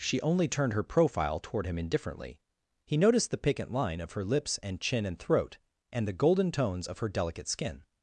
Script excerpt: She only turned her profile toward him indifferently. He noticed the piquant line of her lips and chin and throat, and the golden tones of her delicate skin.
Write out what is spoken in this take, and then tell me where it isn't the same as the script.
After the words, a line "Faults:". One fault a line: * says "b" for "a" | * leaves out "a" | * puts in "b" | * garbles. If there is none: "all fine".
She only turned her profile toward him indifferently. He noticed the piquant line of her lips and chin and throat, and the golden tones of her delicate skin.
Faults:
all fine